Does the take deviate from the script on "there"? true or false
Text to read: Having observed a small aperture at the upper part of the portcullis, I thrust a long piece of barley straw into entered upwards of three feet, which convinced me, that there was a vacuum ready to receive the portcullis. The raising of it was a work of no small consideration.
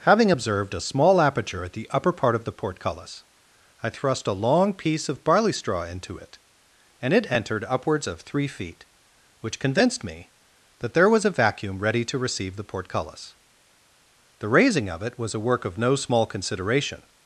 false